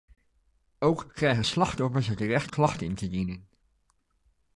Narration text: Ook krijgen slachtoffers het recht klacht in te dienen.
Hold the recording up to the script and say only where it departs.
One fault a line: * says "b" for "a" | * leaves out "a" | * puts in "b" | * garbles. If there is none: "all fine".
all fine